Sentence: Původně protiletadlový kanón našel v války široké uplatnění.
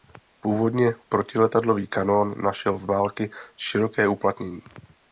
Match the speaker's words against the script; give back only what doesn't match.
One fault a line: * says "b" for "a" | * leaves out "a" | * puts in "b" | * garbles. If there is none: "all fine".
all fine